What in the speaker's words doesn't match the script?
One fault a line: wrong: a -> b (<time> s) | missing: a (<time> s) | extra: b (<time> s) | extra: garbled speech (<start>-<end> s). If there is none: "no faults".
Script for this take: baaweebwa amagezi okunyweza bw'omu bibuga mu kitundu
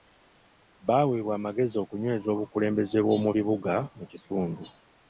extra: obukulembeze (2.3 s)